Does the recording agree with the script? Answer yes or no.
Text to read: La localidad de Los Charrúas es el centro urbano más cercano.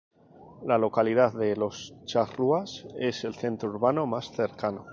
yes